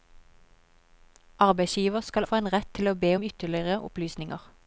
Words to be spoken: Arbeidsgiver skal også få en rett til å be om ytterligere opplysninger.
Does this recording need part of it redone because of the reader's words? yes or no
yes